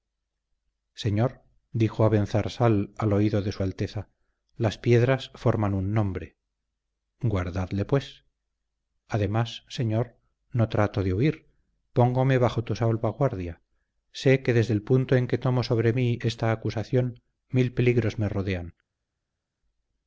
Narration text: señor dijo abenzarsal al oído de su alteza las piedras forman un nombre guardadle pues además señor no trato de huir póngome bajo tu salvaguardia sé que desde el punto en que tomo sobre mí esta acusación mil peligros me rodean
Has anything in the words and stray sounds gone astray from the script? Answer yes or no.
no